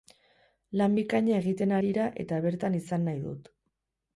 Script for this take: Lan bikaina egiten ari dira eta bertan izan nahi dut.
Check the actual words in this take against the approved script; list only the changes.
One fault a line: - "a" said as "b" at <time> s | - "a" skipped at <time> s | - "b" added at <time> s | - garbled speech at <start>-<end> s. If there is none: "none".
- "ari" skipped at 1.8 s